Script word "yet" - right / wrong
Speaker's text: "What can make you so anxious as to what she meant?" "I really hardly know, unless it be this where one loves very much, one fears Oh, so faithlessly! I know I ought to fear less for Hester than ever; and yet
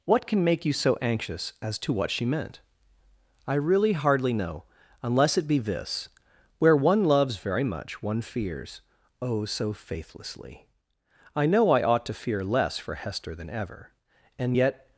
right